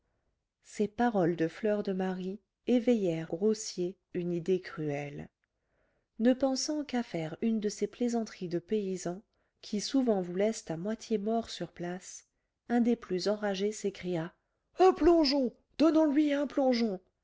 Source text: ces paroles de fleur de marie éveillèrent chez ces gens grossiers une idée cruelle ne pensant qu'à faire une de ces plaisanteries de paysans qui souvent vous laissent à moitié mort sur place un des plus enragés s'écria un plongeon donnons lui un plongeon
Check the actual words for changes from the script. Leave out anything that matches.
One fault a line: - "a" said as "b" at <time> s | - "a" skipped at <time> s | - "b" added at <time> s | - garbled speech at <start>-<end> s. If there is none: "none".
- "chez ces gens" skipped at 3.3 s